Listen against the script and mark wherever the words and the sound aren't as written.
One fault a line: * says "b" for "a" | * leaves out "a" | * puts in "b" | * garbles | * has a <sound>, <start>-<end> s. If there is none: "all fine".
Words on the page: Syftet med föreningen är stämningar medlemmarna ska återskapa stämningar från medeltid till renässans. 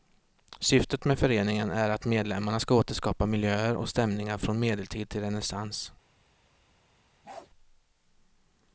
* says "att" for "stämningar"
* puts in "miljöer och"
* has a bark, 7.2-7.5 s